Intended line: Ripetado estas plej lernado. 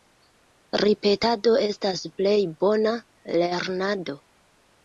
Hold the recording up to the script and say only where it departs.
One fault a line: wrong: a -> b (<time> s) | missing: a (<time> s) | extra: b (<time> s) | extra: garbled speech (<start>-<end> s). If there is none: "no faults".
extra: bona (2.7 s)